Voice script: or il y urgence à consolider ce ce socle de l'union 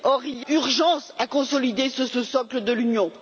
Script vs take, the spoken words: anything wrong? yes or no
no